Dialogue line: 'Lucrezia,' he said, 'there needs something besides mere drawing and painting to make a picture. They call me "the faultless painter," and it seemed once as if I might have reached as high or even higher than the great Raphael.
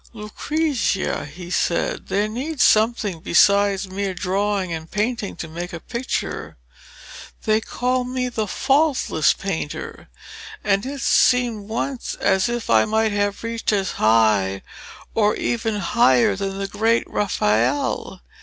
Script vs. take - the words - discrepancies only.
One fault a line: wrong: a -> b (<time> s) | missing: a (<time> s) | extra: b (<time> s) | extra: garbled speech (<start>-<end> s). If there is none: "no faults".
no faults